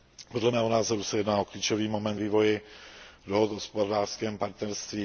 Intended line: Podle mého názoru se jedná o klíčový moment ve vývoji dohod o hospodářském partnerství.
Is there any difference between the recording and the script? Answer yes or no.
yes